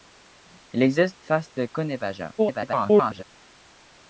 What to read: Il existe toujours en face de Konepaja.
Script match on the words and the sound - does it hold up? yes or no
no